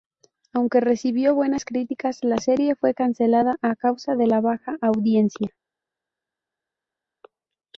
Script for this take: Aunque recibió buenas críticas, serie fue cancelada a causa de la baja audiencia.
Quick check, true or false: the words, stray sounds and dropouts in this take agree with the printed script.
false